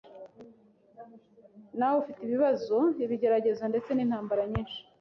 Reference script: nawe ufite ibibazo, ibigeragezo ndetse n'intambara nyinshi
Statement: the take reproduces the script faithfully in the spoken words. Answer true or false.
true